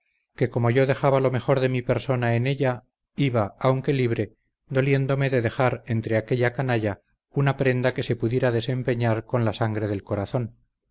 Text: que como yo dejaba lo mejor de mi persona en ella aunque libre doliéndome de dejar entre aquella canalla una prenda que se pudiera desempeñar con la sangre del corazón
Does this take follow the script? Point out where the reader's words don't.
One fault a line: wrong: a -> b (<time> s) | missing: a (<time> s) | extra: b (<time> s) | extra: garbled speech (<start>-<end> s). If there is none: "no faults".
extra: iba (3.1 s)